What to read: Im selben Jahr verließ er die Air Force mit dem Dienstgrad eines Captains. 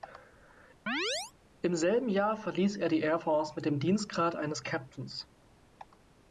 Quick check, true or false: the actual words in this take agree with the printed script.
true